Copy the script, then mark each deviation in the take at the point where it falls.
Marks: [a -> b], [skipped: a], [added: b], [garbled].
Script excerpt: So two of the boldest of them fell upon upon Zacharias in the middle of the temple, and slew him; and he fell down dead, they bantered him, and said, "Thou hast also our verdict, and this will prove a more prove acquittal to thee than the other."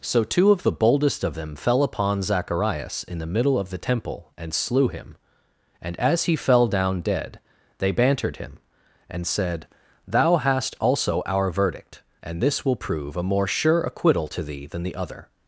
So two of the boldest of them fell upon [skipped: upon] Zacharias in the middle of the temple, and slew him; and [added: as] he fell down dead, they bantered him, and said, "Thou hast also our verdict, and this will prove a more [prove -> sure] acquittal to thee than the other."